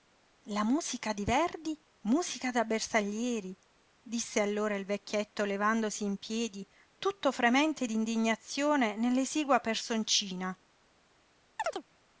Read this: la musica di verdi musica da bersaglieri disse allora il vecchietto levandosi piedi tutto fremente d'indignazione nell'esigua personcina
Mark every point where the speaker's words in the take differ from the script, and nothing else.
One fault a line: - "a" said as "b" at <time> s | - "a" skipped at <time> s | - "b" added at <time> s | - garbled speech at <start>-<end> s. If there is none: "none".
- "in" added at 6.0 s